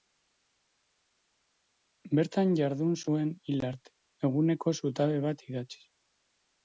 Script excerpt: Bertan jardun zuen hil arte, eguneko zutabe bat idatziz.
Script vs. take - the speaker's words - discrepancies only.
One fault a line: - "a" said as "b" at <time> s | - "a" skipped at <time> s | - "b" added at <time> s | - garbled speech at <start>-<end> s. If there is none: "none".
none